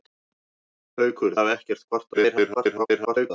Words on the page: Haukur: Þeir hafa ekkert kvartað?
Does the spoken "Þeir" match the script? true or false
false